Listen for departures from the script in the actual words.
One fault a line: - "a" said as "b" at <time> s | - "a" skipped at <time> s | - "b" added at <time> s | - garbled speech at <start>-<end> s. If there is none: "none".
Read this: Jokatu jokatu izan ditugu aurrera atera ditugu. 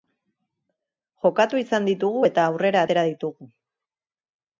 - "jokatu" skipped at 1.6 s
- "eta" added at 2.3 s